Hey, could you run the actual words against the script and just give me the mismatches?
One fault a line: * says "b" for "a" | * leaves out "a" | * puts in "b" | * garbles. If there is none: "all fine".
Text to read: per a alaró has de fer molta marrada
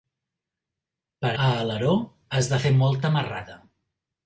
all fine